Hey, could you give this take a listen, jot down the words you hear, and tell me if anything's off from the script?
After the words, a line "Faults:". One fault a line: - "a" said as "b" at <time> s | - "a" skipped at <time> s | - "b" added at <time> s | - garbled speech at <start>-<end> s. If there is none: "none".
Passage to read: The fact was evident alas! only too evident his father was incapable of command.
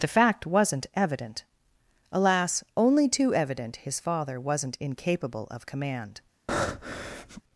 The fact wasn't evident alas! only too evident his father wasn't incapable of command.
Faults:
- "was" said as "wasn't" at 0.5 s
- "was" said as "wasn't" at 4.4 s